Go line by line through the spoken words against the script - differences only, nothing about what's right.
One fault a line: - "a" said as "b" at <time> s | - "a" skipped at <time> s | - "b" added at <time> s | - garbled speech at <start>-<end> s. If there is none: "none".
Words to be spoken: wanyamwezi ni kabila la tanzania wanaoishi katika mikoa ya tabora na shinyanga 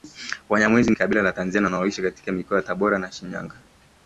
- "ni" skipped at 0.9 s